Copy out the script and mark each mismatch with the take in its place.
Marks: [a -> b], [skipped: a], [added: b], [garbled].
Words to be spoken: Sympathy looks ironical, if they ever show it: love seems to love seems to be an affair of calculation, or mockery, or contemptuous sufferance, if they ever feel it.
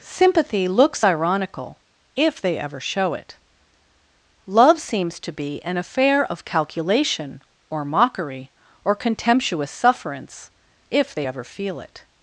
Sympathy looks ironical, if they ever show it: love seems to [skipped: love seems to] be an affair of calculation, or mockery, or contemptuous sufferance, if they ever feel it.